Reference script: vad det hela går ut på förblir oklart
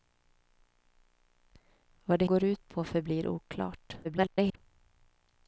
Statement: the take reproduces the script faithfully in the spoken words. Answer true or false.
false